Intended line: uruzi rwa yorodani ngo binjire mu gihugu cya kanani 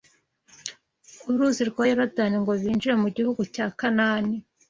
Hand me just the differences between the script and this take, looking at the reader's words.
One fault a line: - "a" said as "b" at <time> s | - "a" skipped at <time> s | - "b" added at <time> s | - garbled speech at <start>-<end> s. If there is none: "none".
none